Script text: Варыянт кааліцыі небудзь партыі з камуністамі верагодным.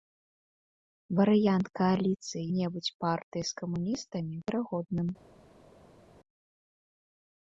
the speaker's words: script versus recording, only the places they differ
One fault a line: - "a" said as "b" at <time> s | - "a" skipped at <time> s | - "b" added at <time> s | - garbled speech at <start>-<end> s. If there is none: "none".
none